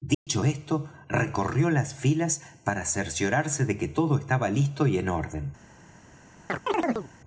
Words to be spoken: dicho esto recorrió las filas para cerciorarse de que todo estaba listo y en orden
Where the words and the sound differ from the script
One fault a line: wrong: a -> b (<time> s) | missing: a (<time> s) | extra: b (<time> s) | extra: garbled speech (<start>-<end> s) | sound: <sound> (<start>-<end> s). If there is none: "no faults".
sound: dropout (0.1-0.3 s)
sound: chirp (6.5-7.1 s)